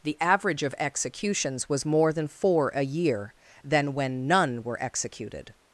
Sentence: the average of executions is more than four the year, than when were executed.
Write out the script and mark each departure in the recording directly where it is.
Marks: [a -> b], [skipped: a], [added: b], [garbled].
the average of executions [is -> was] more than four [the -> a] year, than when [added: none] were executed.